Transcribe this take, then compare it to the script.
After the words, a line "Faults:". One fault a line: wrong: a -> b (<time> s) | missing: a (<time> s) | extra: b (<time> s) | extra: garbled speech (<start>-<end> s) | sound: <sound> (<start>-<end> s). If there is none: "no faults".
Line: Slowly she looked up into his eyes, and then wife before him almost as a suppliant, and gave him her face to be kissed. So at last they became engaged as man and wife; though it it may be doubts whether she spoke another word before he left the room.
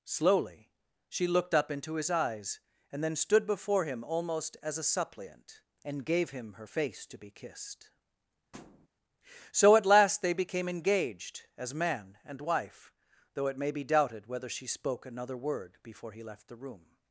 Slowly she looked up into his eyes, and then stood before him almost as a suppliant, and gave him her face to be kissed. So at last they became engaged as man and wife; though it may be doubted whether she spoke another word before he left the room.
Faults:
wrong: wife -> stood (3.2 s)
sound: thud (8.5-8.9 s)
missing: it (13.6 s)
wrong: doubts -> doubted (13.9 s)